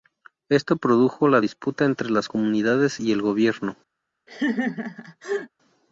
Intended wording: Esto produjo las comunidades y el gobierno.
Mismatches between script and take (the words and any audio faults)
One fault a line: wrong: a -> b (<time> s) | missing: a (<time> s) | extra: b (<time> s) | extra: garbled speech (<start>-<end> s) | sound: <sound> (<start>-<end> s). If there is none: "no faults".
extra: la disputa entre (1.3 s)
sound: laugh (4.3-5.5 s)